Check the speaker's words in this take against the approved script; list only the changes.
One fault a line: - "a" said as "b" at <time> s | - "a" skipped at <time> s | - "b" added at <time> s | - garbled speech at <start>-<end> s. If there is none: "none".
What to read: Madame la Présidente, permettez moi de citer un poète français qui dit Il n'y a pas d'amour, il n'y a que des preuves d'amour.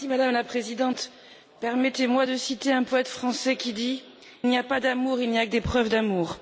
- "Il" skipped at 4.0 s